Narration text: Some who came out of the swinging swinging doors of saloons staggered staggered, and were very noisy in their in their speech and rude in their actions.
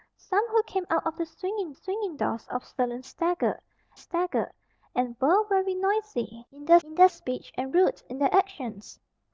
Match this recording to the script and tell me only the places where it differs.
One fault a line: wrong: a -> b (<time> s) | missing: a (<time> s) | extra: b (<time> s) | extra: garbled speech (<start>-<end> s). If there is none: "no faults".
no faults